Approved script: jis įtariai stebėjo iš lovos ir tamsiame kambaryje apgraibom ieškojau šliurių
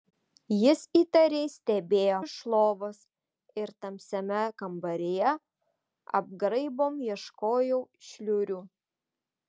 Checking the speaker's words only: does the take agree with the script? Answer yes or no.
yes